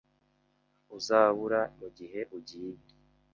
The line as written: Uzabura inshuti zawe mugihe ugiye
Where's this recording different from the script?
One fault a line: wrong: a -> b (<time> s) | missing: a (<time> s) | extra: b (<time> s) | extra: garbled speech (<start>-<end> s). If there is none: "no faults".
missing: inshuti zawe (1.6 s)